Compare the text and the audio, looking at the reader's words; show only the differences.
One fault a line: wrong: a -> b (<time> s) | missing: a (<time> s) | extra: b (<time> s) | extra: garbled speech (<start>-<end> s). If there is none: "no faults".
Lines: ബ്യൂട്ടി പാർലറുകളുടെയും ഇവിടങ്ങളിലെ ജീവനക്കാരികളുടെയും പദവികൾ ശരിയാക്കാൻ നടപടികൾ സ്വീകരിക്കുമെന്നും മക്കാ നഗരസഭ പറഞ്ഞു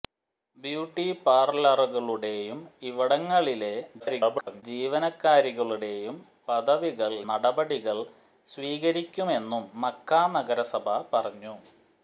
extra: garbled speech (4.0-4.6 s)
missing: ശരിയാക്കാൻ (7.1 s)